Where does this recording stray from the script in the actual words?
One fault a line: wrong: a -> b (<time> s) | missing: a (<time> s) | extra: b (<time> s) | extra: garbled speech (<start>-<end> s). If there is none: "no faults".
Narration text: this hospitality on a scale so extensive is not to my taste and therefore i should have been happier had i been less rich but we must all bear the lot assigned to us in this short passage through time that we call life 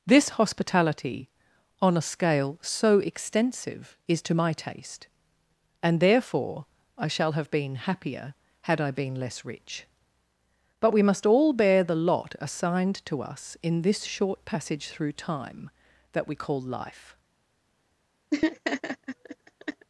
missing: not (4.2 s)
wrong: should -> shall (7.1 s)